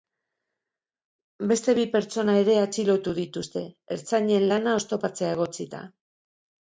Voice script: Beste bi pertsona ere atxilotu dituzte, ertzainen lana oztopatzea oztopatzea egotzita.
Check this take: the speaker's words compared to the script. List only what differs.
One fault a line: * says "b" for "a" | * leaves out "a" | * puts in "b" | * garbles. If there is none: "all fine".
* leaves out "oztopatzea"